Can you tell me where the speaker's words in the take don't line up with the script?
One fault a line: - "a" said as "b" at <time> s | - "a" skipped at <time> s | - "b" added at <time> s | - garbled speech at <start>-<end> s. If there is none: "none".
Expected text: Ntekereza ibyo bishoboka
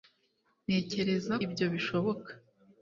none